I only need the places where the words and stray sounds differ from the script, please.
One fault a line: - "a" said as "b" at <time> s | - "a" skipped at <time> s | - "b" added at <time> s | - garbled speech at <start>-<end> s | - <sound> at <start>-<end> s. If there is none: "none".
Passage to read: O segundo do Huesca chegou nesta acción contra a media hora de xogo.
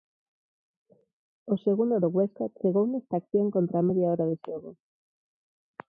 none